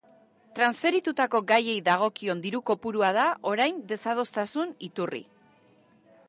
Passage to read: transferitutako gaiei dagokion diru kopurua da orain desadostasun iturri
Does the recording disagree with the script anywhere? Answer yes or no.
no